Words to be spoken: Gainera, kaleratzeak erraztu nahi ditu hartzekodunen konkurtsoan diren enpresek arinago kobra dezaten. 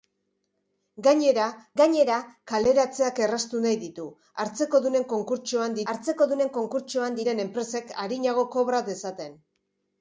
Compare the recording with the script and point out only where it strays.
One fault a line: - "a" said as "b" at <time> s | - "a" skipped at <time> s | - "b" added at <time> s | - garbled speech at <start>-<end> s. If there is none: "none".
- "gainera" added at 1.8 s
- "hartzekodunen konkurtsoan" added at 5.9 s